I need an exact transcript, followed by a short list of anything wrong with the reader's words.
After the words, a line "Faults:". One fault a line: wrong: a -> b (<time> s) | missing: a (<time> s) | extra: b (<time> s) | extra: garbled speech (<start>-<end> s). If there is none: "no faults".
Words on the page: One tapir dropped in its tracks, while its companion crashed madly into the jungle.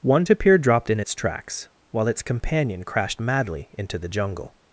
One tapir dropped in its tracks, while its companion crashed madly into the jungle.
Faults:
no faults